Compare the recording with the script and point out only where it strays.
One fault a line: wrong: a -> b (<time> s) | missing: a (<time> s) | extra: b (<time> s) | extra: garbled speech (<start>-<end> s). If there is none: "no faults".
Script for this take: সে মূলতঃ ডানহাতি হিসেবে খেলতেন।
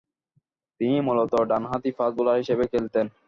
wrong: সে -> তিনি (0.8 s)
extra: ফাস্ট বোলার (2.0 s)